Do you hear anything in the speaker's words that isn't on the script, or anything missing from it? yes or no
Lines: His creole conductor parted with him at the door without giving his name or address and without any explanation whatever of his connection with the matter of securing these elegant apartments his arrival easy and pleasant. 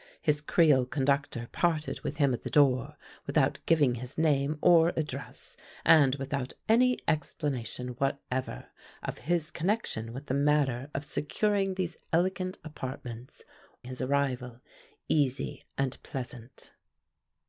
no